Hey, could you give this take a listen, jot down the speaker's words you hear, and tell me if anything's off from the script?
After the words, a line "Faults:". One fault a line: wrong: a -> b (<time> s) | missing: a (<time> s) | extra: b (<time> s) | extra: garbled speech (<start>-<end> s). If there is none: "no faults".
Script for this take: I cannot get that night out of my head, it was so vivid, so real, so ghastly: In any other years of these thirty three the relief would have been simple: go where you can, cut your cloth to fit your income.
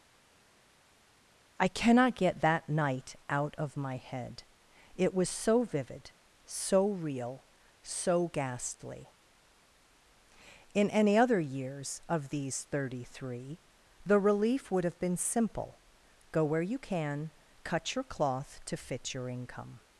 I cannot get that night out of my head, it was so vivid, so real, so ghastly: In any other years of these thirty three the relief would have been simple: go where you can, cut your cloth to fit your income.
Faults:
no faults